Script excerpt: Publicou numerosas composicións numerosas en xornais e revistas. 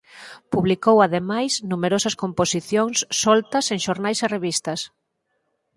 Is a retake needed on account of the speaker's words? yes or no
yes